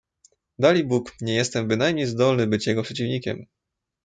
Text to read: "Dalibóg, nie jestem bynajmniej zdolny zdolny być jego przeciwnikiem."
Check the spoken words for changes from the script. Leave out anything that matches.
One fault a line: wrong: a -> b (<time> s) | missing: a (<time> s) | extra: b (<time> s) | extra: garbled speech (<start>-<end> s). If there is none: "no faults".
missing: zdolny (2.5 s)